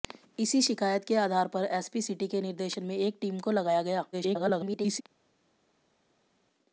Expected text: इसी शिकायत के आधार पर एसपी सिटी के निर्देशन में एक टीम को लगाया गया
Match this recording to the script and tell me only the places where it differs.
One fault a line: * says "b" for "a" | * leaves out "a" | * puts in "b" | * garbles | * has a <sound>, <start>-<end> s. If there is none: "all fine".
* garbles